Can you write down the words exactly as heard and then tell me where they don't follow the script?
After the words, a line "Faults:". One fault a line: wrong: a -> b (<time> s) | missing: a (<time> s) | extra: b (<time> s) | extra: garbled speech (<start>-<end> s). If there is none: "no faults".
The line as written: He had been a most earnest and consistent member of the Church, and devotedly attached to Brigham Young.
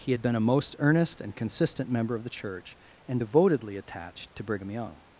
He had been a most earnest and consistent member of the Church, and devotedly attached to Brigham Young.
Faults:
no faults